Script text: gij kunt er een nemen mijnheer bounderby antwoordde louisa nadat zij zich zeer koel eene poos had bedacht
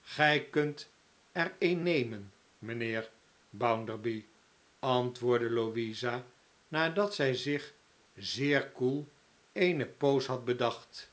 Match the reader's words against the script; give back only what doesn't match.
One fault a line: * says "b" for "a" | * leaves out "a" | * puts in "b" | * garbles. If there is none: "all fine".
all fine